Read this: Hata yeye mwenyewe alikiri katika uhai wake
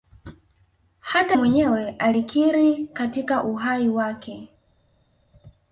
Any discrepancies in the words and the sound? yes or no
yes